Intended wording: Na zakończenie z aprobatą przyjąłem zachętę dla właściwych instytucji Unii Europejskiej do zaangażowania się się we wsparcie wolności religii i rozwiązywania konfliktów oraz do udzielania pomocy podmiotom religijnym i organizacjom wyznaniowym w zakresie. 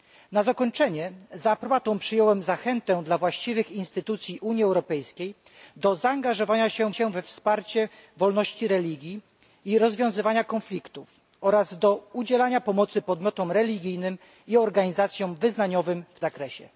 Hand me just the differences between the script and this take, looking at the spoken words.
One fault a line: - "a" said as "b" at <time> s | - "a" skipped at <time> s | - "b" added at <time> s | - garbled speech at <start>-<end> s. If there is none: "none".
none